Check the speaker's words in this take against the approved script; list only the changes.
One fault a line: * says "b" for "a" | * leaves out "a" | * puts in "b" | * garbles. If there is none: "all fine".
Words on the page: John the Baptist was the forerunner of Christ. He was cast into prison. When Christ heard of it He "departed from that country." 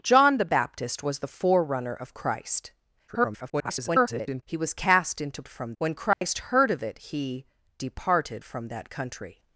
* garbles
* says "from" for "prison"